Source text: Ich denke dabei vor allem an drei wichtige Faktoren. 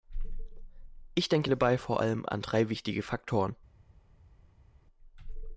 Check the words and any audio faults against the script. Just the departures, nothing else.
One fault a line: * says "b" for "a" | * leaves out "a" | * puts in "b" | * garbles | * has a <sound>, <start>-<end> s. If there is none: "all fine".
all fine